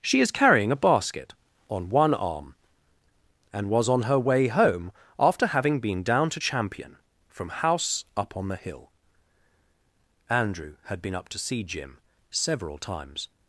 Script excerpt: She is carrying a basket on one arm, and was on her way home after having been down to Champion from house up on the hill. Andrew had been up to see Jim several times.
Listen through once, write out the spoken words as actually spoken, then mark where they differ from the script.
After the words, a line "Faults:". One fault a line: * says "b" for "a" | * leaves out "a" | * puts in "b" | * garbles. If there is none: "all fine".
She is carrying a basket on one arm, and was on her way home after having been down to Champion from house up on the hill. Andrew had been up to see Jim several times.
Faults:
all fine